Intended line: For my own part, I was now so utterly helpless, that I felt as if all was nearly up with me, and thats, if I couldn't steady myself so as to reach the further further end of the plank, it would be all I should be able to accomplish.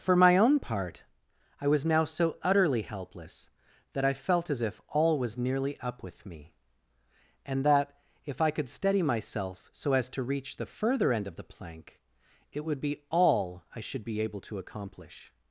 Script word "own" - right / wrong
right